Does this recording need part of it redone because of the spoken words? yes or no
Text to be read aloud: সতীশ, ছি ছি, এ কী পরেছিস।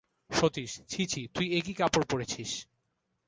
yes